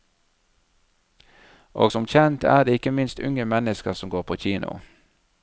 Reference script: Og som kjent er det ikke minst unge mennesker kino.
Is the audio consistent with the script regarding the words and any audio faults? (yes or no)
no